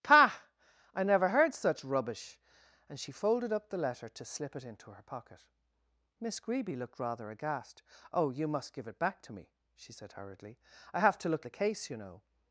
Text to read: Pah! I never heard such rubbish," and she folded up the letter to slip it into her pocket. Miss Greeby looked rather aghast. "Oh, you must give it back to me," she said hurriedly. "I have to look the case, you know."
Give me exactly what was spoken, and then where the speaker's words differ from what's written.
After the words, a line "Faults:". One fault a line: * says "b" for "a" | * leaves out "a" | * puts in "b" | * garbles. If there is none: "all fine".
Pah! I never heard such rubbish," and she folded up the letter to slip it into her pocket. Miss Greeby looked rather aghast. "Oh, you must give it back to me," she said hurriedly. "I have to look the case, you know."
Faults:
all fine